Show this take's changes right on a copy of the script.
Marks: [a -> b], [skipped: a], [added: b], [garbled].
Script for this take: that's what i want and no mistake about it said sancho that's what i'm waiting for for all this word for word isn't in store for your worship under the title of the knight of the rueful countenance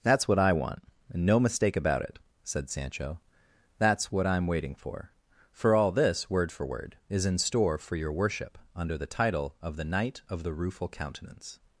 that's what i want and no mistake about it said sancho that's what i'm waiting for for all this word for word [isn't -> is] in store for your worship under the title of the knight of the rueful countenance